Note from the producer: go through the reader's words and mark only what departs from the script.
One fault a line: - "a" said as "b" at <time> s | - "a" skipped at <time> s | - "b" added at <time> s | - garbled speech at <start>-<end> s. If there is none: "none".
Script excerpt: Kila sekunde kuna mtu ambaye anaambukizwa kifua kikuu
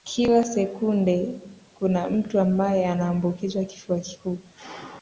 none